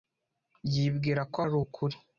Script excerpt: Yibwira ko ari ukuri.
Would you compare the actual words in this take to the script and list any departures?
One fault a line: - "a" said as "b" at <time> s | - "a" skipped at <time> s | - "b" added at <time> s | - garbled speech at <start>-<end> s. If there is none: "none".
none